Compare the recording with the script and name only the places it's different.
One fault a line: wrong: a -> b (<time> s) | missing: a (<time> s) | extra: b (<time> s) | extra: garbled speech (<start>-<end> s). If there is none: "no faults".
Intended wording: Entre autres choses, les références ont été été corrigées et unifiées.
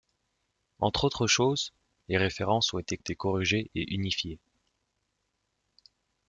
no faults